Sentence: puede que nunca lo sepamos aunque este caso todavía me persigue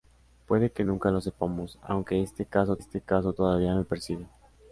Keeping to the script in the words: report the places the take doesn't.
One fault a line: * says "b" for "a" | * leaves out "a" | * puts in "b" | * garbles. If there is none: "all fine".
* puts in "este caso"